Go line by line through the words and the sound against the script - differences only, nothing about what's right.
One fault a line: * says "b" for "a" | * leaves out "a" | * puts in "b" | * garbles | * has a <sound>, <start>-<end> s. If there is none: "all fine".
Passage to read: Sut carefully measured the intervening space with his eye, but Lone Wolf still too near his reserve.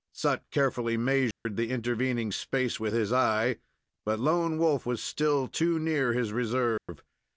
* has a dropout, 1.3-1.5 s
* puts in "was"
* has a dropout, 6.8-6.9 s